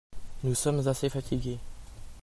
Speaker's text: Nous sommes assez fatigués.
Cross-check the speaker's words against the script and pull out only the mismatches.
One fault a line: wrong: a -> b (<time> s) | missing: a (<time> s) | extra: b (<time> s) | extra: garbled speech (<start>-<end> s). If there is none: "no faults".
no faults